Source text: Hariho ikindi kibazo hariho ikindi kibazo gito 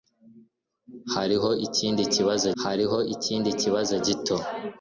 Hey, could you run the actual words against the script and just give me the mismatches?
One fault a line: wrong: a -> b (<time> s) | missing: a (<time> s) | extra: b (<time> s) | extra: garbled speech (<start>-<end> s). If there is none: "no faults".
no faults